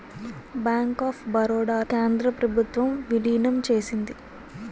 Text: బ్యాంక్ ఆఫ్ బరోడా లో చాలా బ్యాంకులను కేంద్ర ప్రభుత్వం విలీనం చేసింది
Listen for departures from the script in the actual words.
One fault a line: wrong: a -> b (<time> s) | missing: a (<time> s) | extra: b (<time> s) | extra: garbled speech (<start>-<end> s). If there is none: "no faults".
missing: లో చాలా బ్యాంకులను (1.8 s)